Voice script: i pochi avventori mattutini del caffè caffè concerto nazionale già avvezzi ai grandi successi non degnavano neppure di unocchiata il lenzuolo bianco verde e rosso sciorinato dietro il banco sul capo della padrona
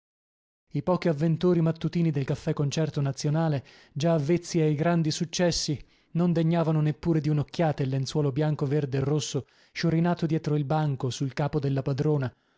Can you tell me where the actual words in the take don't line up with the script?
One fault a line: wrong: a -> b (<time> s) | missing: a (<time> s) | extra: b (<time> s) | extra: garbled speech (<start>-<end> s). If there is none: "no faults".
missing: caffè (2.5 s)